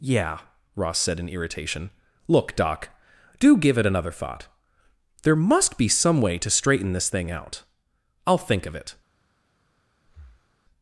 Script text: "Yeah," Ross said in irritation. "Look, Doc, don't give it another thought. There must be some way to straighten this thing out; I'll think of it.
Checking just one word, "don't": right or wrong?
wrong